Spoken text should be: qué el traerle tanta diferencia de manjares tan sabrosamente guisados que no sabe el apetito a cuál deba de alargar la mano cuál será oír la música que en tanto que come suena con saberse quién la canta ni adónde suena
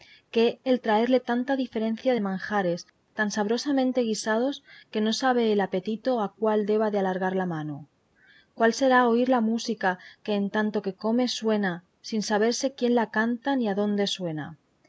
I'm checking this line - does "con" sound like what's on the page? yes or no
no